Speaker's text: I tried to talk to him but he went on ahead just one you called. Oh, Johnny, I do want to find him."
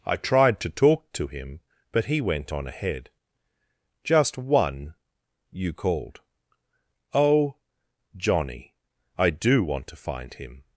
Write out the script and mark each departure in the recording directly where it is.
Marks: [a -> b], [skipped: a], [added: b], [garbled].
I tried to talk to him but he went on ahead just one you called. Oh, Johnny, I do want to find him."